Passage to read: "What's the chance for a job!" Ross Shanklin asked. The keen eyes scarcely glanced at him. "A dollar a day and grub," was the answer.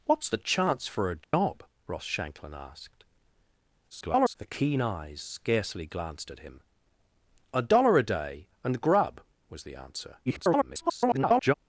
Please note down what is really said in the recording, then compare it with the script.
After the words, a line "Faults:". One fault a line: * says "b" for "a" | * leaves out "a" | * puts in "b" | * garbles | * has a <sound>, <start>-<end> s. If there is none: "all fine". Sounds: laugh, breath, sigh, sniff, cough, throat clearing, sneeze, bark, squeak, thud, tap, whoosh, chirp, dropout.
"What's the chance for a job!" Ross Shanklin asked. [garbled] The keen eyes scarcely glanced at him. "A dollar a day and grub," was the answer. [garbled]
Faults:
* has a dropout, 1.2-1.3 s
* garbles
* garbles